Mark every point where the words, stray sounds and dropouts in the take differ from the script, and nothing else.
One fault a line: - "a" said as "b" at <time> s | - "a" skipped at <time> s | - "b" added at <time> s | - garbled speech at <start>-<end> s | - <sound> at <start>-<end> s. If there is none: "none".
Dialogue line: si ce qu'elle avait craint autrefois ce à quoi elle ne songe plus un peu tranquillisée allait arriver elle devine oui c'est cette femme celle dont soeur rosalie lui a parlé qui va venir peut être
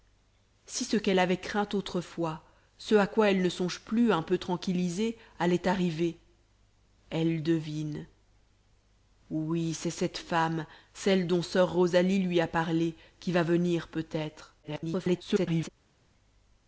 - garbled speech at 14.6-15.7 s